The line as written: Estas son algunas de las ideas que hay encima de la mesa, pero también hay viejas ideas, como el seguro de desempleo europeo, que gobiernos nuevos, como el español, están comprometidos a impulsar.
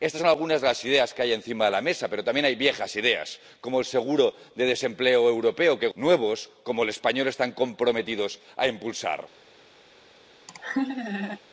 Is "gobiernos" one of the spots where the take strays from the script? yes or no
yes